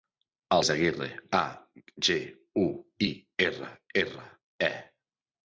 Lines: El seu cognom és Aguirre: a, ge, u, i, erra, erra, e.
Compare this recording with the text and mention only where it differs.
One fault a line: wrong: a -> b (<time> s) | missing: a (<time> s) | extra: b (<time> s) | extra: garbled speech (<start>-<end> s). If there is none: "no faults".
missing: seu cognom (0.6 s)